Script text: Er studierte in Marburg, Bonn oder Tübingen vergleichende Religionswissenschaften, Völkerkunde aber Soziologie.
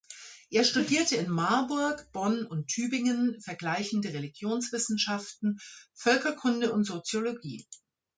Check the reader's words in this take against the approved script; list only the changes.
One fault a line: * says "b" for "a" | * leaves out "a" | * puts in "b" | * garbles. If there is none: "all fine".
* says "und" for "oder"
* says "und" for "aber"